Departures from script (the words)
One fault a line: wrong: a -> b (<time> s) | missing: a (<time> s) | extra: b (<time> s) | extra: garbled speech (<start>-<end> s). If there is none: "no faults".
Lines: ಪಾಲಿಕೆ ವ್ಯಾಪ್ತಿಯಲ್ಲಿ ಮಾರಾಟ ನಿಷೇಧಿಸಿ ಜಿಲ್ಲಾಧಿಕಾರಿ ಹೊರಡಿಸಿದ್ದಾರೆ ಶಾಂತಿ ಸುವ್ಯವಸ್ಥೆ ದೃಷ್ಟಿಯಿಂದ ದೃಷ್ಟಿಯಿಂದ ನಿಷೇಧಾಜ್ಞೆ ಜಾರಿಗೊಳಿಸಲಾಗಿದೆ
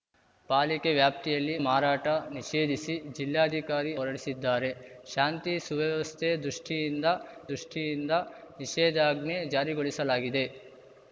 no faults